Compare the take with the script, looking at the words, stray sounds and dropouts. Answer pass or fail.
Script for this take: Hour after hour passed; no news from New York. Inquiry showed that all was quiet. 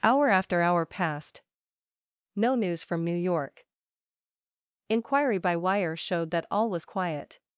fail